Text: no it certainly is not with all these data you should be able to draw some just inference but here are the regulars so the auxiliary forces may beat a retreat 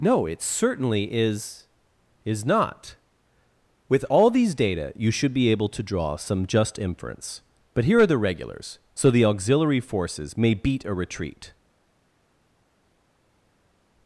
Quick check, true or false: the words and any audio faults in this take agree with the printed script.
false